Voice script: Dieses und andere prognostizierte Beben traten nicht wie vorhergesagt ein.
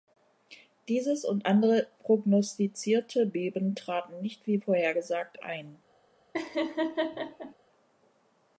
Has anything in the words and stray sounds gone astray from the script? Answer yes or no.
yes